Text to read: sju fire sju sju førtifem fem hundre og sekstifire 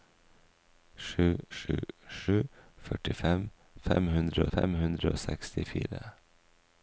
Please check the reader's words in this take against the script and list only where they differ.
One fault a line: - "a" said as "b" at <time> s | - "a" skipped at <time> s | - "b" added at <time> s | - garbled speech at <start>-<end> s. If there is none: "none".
- "fire" skipped at 1.2 s
- "fem hundre" added at 4.6 s